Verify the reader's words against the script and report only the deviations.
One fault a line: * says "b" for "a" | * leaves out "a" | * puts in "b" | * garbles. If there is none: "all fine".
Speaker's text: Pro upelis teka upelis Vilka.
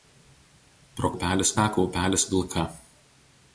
all fine